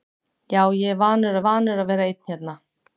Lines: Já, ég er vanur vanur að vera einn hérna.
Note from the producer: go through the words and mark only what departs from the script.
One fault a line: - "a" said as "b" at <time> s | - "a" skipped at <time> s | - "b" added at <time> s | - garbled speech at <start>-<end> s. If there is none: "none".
none